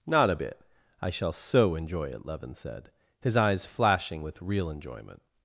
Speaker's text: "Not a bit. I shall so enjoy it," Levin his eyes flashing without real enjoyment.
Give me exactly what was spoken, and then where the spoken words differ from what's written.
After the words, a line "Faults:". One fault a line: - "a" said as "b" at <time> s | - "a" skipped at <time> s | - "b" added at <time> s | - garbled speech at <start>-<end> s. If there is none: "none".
"Not a bit. I shall so enjoy it," Levin said, his eyes flashing with real enjoyment.
Faults:
- "said" added at 2.5 s
- "without" said as "with" at 4.2 s